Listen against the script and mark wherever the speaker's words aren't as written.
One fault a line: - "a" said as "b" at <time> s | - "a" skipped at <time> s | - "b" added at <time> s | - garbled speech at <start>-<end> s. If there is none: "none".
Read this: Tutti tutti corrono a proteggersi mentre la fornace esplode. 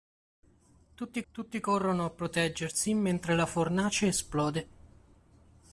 none